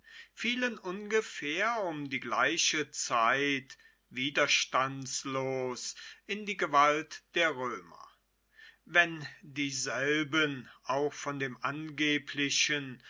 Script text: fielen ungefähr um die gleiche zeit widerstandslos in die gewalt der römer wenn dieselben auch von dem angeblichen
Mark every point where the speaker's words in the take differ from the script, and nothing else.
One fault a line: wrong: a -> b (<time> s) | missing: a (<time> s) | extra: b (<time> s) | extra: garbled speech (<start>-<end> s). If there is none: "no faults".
no faults